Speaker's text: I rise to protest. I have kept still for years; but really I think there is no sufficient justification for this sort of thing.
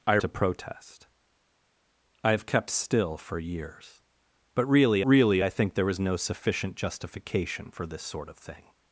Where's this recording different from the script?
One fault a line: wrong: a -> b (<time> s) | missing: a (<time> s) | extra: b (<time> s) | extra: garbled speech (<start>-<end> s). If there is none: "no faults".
missing: rise (0.2 s)
extra: really (5.0 s)